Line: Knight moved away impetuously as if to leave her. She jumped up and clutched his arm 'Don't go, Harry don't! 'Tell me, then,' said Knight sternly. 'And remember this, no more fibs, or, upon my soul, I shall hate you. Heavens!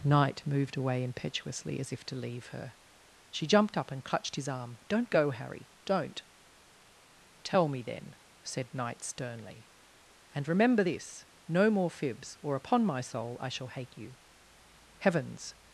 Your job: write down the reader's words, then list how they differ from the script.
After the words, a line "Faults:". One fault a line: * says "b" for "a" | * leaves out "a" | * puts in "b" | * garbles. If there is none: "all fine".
Knight moved away impetuously as if to leave her. She jumped up and clutched his arm 'Don't go, Harry don't! 'Tell me, then,' said Knight sternly. 'And remember this, no more fibs, or, upon my soul, I shall hate you. Heavens!
Faults:
all fine